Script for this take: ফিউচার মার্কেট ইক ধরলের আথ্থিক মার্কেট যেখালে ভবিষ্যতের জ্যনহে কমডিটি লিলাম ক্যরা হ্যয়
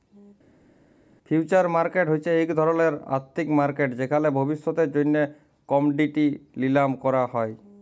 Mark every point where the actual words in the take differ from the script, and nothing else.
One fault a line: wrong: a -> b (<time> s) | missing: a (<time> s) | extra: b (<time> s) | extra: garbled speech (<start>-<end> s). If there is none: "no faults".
extra: হছে (2.1 s)